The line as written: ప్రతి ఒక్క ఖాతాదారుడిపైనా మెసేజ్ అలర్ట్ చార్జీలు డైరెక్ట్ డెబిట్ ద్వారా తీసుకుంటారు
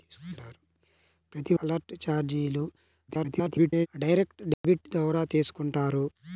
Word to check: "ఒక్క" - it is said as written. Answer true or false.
false